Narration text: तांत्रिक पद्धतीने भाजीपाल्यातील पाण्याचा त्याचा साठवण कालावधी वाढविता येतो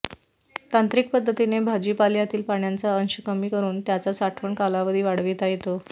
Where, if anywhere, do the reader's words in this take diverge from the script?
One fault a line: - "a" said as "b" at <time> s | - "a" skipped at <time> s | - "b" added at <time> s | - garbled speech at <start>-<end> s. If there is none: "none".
- "अंश कमी करून" added at 3.0 s